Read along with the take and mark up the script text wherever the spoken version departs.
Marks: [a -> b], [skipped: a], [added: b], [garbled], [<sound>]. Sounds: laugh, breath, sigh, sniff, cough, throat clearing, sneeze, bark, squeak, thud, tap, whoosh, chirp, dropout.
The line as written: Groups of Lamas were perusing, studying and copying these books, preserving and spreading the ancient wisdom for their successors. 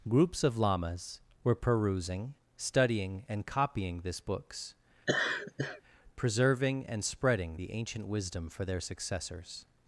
Groups of Lamas were perusing, studying and copying [these -> this] books, [laugh] preserving and spreading the ancient wisdom for their successors.